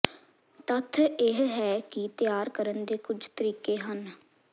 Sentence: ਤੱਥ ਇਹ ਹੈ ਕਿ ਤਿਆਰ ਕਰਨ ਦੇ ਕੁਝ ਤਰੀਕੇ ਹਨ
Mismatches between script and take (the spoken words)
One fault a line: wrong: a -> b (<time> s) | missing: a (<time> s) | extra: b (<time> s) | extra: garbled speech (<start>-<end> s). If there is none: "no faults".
no faults